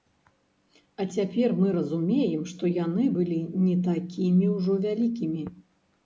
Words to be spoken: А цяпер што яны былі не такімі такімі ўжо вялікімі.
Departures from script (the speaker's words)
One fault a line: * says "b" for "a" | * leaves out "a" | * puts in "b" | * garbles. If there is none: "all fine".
* puts in "мы разумеем"
* leaves out "такімі"